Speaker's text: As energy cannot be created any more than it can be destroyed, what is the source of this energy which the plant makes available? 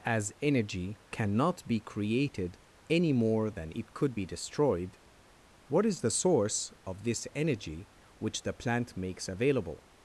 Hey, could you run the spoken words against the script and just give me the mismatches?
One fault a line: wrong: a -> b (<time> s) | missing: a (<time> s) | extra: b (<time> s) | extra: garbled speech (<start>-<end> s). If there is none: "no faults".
wrong: can -> could (3.9 s)